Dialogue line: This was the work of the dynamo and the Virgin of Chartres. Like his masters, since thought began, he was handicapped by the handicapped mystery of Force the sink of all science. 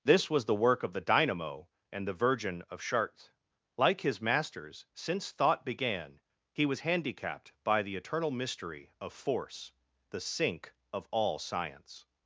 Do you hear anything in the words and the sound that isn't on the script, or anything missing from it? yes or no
yes